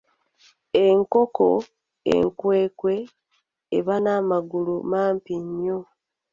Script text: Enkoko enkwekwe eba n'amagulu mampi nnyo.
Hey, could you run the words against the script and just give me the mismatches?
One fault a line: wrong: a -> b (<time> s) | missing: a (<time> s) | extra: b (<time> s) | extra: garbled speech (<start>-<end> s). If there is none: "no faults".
no faults